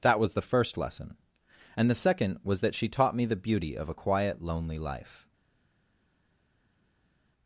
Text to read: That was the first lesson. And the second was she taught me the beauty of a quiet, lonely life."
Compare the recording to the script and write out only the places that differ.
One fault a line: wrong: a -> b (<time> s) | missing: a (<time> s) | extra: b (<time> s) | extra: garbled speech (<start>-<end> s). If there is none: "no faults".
extra: that (2.6 s)